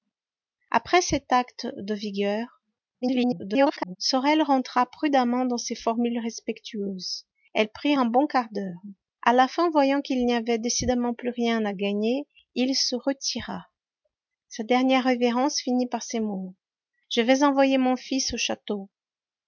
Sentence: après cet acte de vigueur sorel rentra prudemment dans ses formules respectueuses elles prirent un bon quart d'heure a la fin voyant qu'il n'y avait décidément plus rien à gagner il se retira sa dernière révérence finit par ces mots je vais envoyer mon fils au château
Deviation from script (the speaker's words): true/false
true